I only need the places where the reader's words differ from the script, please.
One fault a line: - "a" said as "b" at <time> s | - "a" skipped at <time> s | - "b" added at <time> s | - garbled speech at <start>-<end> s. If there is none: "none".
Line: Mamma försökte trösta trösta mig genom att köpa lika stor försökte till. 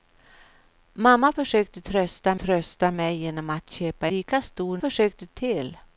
none